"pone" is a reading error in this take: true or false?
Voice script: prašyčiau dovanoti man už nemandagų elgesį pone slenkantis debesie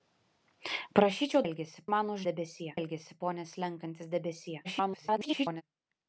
false